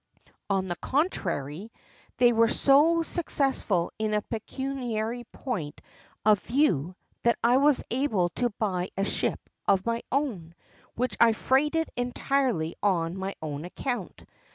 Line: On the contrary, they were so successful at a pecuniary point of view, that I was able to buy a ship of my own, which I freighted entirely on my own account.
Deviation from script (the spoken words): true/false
true